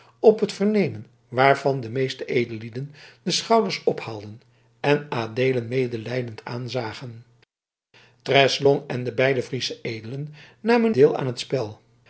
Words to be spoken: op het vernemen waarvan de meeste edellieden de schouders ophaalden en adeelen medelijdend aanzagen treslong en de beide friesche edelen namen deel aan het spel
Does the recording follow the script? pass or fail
pass